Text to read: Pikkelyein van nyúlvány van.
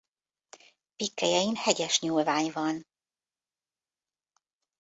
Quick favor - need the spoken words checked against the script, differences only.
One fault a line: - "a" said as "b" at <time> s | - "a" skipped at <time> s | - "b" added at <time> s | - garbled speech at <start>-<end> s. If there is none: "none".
- "van" said as "hegyes" at 1.5 s